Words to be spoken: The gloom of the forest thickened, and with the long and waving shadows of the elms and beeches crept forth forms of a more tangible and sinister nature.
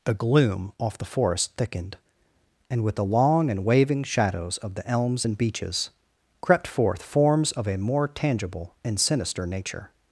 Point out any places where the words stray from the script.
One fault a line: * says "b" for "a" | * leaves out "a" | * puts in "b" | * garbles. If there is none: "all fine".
* says "off" for "of"